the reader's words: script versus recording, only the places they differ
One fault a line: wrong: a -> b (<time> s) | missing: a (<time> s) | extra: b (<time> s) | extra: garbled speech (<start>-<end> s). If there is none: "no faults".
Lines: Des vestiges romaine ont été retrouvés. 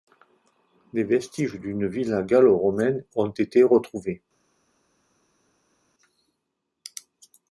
extra: d'une villa gallo (1.6 s)